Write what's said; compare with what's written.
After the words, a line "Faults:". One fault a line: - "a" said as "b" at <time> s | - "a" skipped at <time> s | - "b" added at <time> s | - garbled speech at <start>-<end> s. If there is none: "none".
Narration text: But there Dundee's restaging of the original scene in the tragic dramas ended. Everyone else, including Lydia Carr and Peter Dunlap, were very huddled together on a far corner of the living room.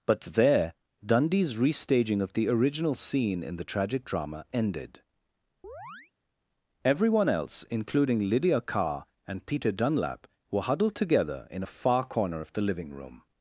But there Dundee's restaging of the original scene in the tragic drama ended. Everyone else, including Lydia Carr and Peter Dunlap, were huddled together in a far corner of the living room.
Faults:
- "dramas" said as "drama" at 4.0 s
- "very" skipped at 10.6 s
- "on" said as "in" at 11.5 s